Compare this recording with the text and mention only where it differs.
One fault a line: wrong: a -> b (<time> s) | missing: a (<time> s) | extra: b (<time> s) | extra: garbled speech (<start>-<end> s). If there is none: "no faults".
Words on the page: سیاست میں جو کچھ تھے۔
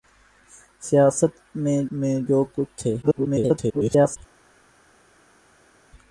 extra: میں (1.9 s)
extra: garbled speech (3.0-4.2 s)